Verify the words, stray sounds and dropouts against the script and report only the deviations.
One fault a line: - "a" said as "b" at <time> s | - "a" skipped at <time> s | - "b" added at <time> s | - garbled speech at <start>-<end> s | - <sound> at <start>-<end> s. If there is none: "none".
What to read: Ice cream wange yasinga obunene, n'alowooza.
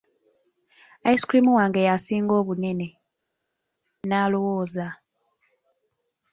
none